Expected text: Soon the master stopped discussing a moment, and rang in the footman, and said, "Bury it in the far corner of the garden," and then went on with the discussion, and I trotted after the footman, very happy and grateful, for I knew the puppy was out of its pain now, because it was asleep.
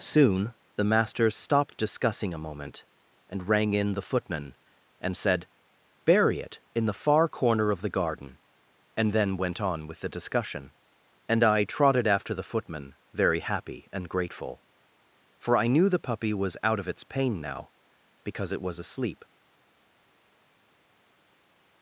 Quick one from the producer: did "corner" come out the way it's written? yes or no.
yes